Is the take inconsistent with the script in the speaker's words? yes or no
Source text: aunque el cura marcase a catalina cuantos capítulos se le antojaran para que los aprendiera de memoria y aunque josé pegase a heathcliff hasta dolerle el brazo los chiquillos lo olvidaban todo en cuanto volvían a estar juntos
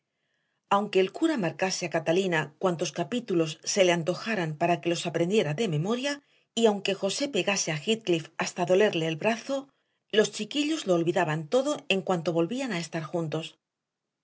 no